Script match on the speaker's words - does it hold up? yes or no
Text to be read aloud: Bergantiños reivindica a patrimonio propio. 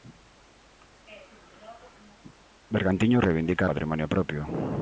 yes